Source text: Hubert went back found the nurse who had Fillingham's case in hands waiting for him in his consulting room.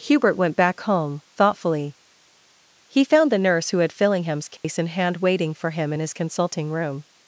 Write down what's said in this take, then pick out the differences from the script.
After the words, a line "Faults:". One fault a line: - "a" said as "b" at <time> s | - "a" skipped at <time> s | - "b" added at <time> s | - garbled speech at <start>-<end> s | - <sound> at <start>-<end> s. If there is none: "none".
Hubert went back home thoughtfully. He found the nurse who had Fillingham's case in hand waiting for him in his consulting room.
Faults:
- "home thoughtfully He" added at 0.8 s
- dropout at 4.6-4.6 s
- "hands" said as "hand" at 4.9 s